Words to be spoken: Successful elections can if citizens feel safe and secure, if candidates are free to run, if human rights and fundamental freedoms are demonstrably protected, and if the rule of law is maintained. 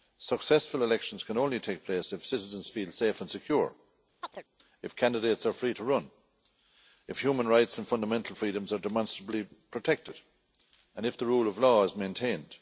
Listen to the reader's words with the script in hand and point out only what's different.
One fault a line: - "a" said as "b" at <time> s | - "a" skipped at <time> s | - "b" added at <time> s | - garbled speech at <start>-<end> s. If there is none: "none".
- "only take place" added at 1.4 s